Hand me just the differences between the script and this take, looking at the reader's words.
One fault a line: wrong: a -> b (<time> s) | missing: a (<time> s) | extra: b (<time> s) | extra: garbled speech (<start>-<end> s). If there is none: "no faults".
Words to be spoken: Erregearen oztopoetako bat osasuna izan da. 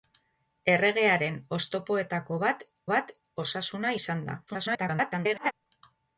extra: bat (2.9 s)
extra: garbled speech (4.5-5.5 s)